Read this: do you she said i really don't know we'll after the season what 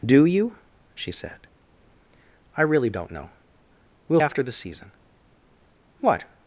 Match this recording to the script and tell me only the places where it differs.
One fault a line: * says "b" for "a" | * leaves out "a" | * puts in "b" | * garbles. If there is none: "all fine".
all fine